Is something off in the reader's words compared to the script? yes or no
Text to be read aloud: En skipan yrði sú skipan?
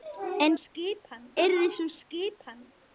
no